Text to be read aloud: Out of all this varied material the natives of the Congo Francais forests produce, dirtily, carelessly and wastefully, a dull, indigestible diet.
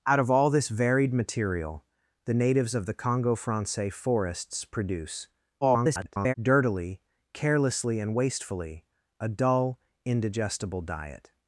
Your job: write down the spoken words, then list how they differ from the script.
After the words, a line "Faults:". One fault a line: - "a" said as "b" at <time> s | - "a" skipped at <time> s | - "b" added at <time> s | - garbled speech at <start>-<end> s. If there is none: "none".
Out of all this varied material the natives of the Congo Francais forests produce, [garbled] dirtily, carelessly and wastefully, a dull, indigestible diet.
Faults:
- garbled speech at 5.6-6.3 s